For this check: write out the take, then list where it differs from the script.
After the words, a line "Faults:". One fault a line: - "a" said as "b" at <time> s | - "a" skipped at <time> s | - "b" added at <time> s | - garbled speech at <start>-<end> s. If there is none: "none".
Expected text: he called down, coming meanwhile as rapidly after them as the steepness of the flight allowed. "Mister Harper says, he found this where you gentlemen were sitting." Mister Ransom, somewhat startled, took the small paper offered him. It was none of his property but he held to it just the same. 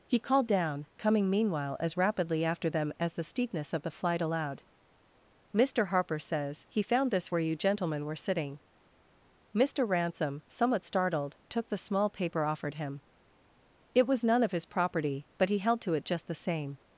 he called down, coming meanwhile as rapidly after them as the steepness of the flight allowed. "Mister Harper says, he found this where you gentlemen were sitting." Mister Ransom, somewhat startled, took the small paper offered him. It was none of his property but he held to it just the same.
Faults:
none